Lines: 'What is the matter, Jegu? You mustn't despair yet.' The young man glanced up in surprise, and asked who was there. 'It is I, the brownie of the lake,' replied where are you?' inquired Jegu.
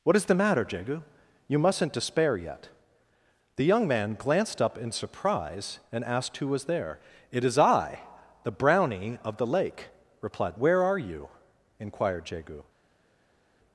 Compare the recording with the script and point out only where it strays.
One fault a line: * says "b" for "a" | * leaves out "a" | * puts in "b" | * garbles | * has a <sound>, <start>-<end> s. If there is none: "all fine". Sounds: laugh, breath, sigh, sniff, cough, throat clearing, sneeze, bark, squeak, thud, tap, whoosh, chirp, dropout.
all fine